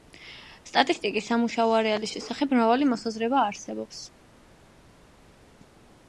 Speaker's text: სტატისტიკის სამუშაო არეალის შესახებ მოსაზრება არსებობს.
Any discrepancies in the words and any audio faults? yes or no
yes